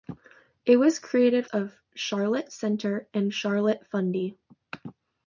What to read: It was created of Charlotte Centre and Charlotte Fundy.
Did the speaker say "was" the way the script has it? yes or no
yes